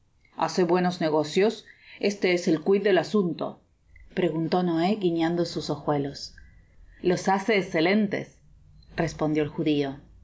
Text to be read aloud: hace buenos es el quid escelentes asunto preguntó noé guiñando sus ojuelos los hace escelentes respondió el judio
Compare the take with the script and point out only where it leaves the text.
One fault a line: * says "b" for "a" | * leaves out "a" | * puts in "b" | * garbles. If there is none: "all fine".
* puts in "negocios este"
* says "del" for "escelentes"